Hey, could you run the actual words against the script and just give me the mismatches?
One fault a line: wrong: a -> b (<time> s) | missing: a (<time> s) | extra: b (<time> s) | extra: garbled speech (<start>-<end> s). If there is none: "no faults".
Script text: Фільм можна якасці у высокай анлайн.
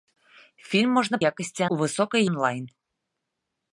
no faults